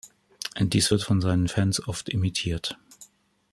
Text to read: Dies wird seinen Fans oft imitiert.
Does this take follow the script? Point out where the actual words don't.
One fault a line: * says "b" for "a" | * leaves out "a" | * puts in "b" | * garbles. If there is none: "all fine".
* puts in "von"